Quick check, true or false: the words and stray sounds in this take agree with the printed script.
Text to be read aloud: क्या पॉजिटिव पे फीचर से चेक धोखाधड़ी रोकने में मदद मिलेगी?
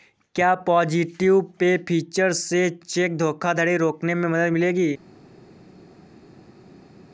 true